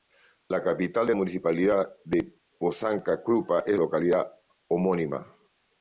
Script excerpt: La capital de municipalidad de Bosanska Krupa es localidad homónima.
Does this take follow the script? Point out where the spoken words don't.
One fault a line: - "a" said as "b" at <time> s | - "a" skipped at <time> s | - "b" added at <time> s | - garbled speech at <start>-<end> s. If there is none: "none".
none